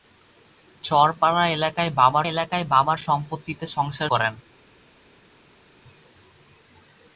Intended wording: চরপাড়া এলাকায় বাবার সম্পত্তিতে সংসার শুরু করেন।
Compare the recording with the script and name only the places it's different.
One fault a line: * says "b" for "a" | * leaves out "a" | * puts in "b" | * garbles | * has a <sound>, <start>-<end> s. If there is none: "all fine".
* puts in "এলাকায় বাবার"
* leaves out "শুরু"